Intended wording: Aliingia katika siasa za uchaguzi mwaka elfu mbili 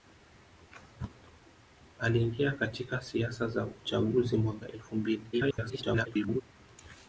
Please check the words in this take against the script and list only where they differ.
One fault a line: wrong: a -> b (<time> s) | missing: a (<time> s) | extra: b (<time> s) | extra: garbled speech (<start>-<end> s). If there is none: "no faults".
extra: garbled speech (5.3-6.4 s)